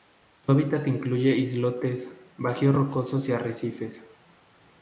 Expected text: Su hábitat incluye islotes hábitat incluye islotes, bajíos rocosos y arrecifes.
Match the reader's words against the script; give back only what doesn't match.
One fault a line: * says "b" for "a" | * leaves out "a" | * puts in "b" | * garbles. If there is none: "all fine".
* leaves out "hábitat incluye islotes"